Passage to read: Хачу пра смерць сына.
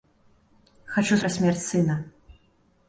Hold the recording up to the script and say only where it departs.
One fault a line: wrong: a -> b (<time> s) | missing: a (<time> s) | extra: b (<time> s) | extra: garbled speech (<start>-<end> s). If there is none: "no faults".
no faults